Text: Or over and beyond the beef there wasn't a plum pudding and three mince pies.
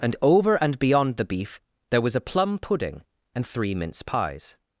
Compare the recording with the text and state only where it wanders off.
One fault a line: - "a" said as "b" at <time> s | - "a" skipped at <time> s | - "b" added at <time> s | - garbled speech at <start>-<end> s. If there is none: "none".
- "Or" said as "And" at 0.0 s
- "wasn't" said as "was" at 2.0 s